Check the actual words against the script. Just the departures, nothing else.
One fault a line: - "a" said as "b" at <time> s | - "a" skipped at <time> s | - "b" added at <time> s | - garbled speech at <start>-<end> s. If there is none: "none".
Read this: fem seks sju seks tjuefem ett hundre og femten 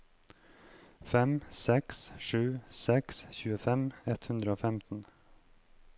none